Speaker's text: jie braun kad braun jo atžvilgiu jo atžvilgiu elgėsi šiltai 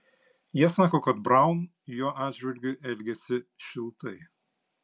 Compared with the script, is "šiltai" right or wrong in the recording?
right